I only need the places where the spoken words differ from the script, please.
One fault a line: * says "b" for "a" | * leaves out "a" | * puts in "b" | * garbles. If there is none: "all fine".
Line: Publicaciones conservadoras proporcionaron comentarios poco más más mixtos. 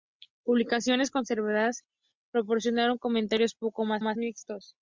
all fine